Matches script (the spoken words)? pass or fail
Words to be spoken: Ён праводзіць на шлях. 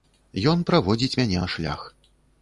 fail